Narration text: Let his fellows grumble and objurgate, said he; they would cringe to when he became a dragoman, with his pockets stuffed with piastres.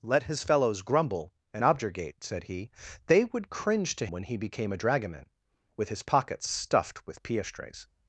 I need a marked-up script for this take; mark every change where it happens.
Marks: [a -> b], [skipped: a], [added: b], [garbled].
Let his fellows grumble and objurgate, said he; they would cringe to when he became a dragoman, with his pockets stuffed with piastres.